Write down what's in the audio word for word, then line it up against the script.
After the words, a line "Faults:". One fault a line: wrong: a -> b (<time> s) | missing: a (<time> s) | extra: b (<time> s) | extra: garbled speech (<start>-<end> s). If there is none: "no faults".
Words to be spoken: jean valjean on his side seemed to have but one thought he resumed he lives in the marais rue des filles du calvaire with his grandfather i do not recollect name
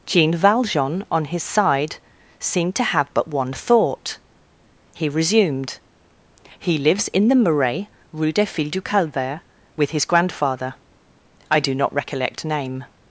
jean valjean on his side seemed to have but one thought he resumed he lives in the marais rue des filles du calvaire with his grandfather i do not recollect name
Faults:
no faults